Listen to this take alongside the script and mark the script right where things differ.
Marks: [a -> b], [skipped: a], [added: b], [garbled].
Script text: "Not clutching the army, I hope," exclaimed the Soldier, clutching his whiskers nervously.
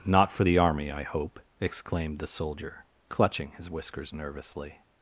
"Not [clutching -> for] the army, I hope," exclaimed the Soldier, clutching his whiskers nervously.